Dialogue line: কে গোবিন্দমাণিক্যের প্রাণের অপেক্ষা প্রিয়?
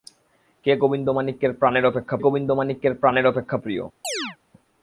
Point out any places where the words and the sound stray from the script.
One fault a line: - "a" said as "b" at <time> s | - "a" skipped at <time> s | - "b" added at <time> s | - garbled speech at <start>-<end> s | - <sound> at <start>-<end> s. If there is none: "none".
- "গোবিন্দমাণিক্যের প্রাণের অপেক্ষা" added at 2.2 s
- chirp at 4.0-4.4 s